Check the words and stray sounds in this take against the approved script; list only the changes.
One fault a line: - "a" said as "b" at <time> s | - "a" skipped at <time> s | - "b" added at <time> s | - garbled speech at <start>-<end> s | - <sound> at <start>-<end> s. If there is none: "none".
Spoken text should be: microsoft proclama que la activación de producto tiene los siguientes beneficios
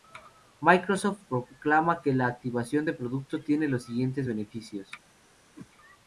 - whoosh at 5.5-5.7 s